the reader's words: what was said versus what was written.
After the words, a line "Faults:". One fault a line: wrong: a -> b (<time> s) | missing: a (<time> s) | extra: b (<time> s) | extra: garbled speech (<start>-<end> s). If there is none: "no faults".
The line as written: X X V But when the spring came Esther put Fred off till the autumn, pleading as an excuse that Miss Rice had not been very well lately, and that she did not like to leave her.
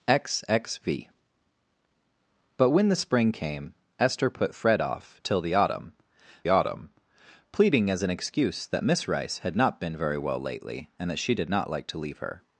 X X V But when the spring came Esther put Fred off till the autumn autumn, pleading as an excuse that Miss Rice had not been very well lately, and that she did not like to leave her.
Faults:
extra: autumn (6.5 s)